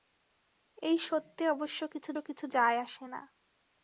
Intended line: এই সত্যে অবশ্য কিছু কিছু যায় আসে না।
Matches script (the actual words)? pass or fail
pass